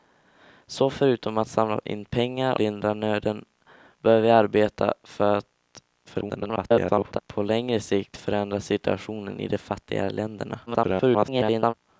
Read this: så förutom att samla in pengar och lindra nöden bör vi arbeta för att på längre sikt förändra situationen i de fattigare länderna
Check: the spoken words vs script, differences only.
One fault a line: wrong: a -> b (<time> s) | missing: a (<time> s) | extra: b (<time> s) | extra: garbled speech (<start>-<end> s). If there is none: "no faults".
missing: och (2.6 s)
extra: garbled speech (6.1-7.2 s)
extra: garbled speech (10.7-11.7 s)